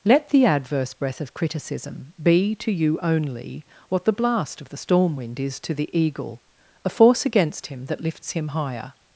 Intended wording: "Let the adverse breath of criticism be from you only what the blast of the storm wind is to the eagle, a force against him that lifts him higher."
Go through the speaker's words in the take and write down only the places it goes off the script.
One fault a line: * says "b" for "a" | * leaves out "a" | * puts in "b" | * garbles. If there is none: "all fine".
* says "to" for "from"